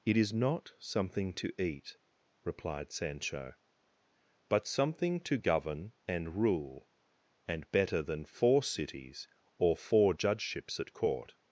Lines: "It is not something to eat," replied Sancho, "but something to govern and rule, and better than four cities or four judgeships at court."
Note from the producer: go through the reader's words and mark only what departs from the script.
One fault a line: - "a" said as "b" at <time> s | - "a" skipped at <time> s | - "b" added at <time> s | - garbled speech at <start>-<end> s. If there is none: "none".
none